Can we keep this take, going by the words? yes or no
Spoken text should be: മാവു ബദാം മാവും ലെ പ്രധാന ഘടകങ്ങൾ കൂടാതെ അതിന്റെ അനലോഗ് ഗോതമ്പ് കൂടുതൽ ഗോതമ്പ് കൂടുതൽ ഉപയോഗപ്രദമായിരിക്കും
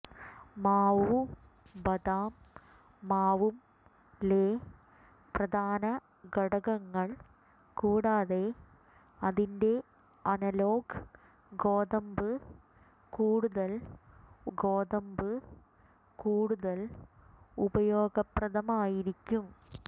yes